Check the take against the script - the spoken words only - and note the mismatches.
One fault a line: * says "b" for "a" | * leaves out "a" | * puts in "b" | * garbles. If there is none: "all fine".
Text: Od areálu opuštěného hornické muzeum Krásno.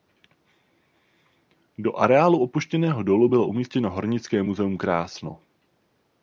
* says "Do" for "Od"
* puts in "dolu bylo umístěno"